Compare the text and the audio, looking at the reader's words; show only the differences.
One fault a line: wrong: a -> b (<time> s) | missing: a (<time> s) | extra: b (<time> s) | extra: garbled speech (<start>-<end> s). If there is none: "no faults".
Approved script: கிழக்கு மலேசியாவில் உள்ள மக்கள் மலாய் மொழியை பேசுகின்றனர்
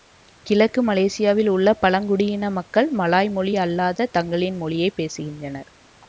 extra: பழங்குடியின (1.8 s)
extra: மொழி அல்லாத தங்களின் (3.3 s)